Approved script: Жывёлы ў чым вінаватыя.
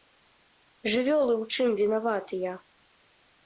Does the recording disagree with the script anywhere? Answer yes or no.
no